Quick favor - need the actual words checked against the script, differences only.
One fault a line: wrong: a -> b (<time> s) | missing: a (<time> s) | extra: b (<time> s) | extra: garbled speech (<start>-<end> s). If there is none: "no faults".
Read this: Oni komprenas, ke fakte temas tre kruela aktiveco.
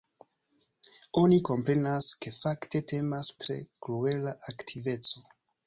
no faults